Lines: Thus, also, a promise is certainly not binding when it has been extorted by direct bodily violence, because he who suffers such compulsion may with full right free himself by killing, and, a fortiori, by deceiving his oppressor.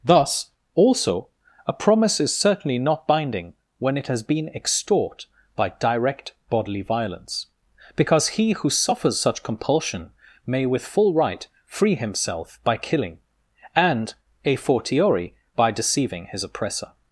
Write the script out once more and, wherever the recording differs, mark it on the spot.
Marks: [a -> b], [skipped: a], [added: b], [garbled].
Thus, also, a promise is certainly not binding when it has been [extorted -> extort] by direct bodily violence, because he who suffers such compulsion may with full right free himself by killing, and, a fortiori, by deceiving his oppressor.